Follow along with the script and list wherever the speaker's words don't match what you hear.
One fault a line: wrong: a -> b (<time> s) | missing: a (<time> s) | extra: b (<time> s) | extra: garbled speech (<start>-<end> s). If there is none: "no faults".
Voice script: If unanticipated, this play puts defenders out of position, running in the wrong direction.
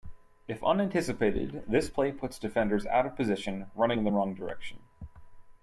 no faults